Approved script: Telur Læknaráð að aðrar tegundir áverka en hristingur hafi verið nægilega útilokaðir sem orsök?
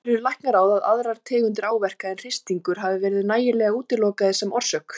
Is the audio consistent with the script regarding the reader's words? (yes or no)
yes